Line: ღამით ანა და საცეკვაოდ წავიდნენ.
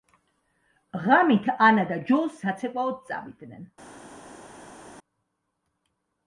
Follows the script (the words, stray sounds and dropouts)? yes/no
no